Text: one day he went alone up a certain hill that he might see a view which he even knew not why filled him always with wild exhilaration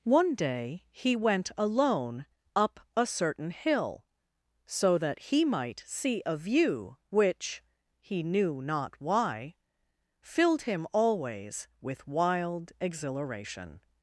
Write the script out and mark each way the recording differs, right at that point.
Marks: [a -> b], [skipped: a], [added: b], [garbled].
one day he went alone up a certain hill [added: so] that he might see a view which he [skipped: even] knew not why filled him always with wild exhilaration